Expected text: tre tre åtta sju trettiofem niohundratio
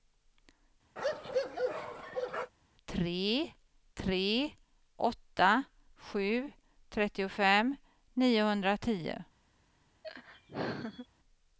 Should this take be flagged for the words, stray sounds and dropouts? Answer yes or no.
yes